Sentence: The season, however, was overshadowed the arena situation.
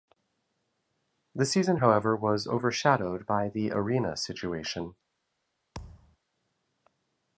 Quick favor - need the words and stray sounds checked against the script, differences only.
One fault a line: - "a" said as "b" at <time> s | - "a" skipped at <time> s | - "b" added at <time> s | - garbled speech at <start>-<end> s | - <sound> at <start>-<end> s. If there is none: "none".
- "by" added at 3.3 s
- thud at 5.7-6.2 s